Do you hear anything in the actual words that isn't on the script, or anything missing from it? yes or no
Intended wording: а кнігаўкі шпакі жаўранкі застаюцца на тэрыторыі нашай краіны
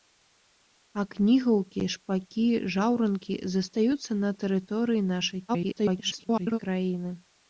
yes